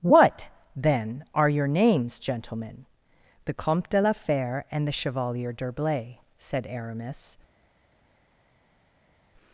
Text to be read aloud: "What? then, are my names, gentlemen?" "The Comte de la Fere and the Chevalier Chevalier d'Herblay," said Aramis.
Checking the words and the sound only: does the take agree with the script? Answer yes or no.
no